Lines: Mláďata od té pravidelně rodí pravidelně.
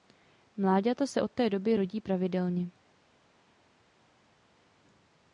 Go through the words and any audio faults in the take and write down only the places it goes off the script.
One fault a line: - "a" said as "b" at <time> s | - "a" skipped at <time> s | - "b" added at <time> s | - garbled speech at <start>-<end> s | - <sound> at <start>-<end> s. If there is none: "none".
- "se" added at 1.1 s
- "pravidelně" said as "doby" at 1.5 s